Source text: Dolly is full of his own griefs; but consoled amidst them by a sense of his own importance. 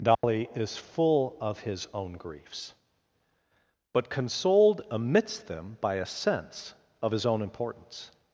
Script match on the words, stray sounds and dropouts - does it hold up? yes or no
no